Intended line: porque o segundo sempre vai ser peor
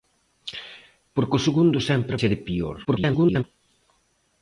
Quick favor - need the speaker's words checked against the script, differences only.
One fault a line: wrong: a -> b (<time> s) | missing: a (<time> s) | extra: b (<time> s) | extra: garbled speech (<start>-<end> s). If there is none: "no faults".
missing: vai (2.1 s)
extra: garbled speech (2.8-3.4 s)